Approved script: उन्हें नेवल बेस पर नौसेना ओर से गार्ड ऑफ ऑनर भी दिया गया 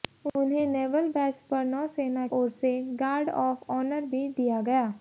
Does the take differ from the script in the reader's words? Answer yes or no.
no